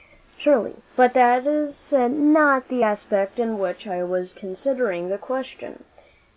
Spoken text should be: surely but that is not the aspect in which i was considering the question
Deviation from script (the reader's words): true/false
false